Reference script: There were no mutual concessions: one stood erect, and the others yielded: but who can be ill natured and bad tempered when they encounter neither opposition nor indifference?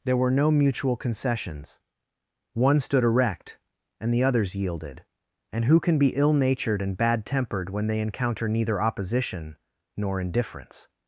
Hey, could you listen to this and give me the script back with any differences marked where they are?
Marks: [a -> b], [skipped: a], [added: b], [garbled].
There were no mutual concessions: one stood erect, and the others yielded: [but -> and] who can be ill natured and bad tempered when they encounter neither opposition nor indifference?